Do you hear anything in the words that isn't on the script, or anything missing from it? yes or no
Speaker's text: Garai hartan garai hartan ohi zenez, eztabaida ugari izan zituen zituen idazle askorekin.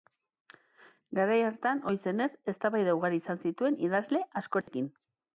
yes